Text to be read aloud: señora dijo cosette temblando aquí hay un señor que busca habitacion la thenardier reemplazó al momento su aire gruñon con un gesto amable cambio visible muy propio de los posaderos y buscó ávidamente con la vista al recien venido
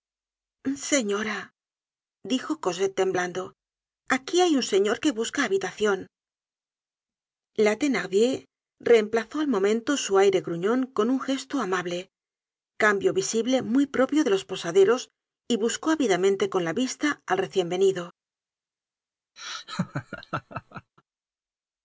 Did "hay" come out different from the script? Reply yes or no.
no